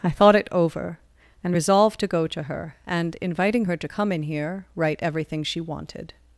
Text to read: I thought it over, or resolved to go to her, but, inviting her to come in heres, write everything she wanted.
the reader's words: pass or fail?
fail